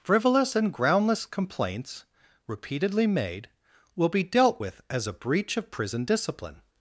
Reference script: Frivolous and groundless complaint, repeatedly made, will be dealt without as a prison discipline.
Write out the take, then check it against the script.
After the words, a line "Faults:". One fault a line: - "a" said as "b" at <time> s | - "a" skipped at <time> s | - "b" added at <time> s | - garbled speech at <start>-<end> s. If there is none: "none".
Frivolous and groundless complaints, repeatedly made, will be dealt with as a breach of prison discipline.
Faults:
- "complaint" said as "complaints" at 1.3 s
- "without" said as "with" at 4.6 s
- "breach of" added at 5.1 s